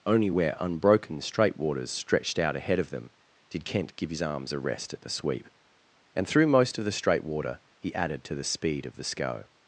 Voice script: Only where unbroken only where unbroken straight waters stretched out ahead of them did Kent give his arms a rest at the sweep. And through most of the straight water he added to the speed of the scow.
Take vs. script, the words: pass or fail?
fail